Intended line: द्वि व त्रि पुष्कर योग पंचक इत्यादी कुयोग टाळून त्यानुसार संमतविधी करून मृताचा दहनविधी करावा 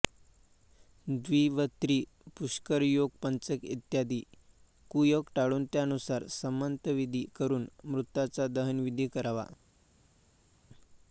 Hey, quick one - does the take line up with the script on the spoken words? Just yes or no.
yes